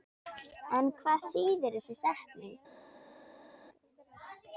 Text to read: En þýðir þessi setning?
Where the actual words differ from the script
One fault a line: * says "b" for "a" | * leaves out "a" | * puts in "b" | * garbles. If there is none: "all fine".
* puts in "hvað"